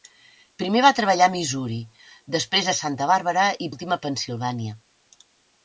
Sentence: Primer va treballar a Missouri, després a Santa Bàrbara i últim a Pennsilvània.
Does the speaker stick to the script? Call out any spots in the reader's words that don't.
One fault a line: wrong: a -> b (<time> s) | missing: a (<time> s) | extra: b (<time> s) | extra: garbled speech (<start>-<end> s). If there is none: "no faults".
no faults